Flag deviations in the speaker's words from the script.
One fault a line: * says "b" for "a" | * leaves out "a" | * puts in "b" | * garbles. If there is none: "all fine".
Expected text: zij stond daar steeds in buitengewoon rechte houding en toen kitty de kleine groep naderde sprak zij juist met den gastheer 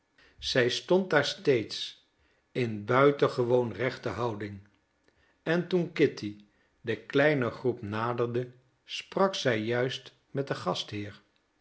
all fine